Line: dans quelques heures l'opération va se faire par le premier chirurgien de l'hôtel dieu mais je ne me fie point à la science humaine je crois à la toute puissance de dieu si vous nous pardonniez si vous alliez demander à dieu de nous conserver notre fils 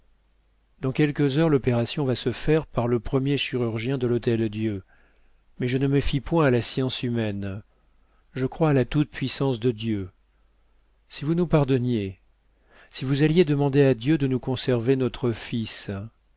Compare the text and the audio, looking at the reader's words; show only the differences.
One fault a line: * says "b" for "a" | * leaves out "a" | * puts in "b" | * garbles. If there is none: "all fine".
all fine